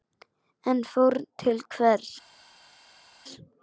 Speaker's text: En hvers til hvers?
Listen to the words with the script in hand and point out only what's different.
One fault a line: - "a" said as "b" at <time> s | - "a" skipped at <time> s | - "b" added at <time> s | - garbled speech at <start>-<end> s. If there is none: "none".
- "hvers" said as "fórn" at 0.9 s